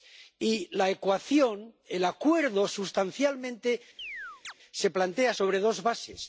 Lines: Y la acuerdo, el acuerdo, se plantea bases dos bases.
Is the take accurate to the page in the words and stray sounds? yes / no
no